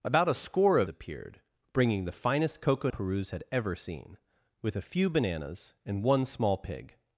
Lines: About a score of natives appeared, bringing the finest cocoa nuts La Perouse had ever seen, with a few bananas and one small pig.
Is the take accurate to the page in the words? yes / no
no